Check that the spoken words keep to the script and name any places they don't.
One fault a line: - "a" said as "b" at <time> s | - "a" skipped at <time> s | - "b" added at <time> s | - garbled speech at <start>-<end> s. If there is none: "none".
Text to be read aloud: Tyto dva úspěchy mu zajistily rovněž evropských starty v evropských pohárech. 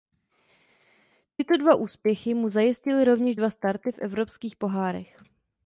- "evropských" said as "dva" at 3.3 s